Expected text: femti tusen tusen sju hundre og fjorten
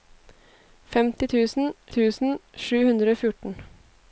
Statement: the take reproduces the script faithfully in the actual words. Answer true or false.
true